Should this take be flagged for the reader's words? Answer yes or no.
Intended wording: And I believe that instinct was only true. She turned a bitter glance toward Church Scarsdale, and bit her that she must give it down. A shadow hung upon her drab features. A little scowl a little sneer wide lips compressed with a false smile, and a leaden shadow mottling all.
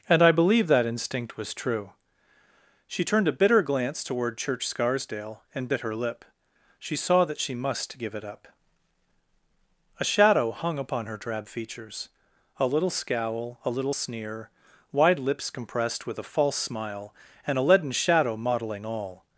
yes